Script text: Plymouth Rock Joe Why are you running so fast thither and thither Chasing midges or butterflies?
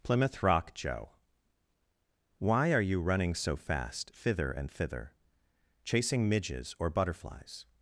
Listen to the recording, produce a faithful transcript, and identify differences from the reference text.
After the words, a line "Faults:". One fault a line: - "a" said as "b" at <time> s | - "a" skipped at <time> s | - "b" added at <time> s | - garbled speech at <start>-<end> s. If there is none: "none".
Plymouth Rock Joe Why are you running so fast thither and thither Chasing midges or butterflies?
Faults:
none